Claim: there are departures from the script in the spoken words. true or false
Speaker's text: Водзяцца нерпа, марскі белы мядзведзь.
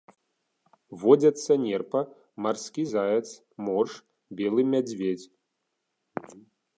true